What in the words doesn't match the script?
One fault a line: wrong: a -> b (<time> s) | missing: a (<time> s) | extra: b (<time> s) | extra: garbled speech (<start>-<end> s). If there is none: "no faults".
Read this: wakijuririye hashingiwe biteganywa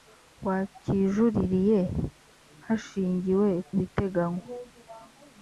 no faults